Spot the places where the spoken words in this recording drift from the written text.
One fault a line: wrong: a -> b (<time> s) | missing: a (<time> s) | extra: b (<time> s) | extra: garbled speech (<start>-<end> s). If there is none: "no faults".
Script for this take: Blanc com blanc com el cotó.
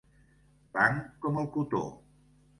missing: blanc com (1.4 s)